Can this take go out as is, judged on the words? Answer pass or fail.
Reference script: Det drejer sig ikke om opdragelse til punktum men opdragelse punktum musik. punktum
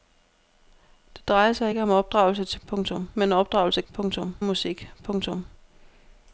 pass